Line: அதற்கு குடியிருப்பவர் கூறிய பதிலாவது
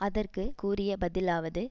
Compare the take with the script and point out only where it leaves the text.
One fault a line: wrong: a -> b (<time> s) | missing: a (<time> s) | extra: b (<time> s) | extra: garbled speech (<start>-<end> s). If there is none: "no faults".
missing: குடியிருப்பவர் (0.4 s)